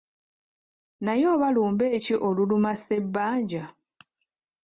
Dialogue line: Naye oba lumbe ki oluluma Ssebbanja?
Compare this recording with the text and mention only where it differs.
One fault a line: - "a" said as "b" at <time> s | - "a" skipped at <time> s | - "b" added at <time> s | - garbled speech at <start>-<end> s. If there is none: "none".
none